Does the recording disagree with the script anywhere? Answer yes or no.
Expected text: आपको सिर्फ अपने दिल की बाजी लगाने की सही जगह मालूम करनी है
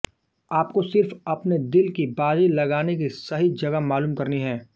no